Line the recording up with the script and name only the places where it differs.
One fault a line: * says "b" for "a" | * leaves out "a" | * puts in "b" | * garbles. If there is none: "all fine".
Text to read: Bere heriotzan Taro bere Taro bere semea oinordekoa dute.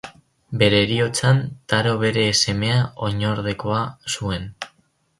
* leaves out "Taro bere"
* says "zuen" for "dute"